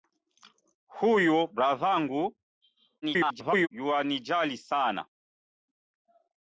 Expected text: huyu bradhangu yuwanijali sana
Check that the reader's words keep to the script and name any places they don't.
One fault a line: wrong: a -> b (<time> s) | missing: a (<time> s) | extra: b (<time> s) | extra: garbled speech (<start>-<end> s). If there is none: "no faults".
extra: garbled speech (3.0-3.7 s)